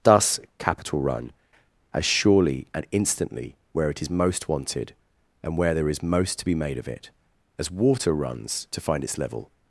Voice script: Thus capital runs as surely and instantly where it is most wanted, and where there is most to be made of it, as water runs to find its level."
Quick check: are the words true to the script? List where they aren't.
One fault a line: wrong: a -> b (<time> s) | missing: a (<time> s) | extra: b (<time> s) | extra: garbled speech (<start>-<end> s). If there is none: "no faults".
wrong: runs -> run (1.0 s)